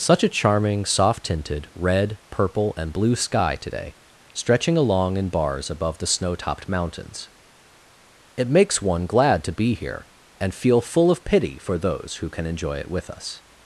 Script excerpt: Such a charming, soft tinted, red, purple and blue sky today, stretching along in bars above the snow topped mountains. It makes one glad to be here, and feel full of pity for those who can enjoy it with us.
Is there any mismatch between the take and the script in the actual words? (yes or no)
no